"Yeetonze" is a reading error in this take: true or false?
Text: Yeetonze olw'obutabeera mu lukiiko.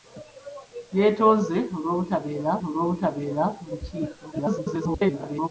false